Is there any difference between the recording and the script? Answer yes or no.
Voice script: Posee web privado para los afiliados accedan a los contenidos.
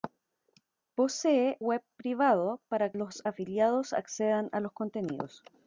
no